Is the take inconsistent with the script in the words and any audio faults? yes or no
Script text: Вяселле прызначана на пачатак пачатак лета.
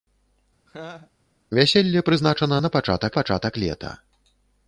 yes